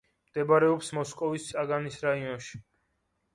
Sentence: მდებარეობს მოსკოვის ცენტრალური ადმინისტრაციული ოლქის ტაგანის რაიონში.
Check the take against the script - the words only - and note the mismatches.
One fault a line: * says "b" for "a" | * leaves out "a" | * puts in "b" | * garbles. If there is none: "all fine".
* leaves out "ცენტრალური ადმინისტრაციული ოლქის"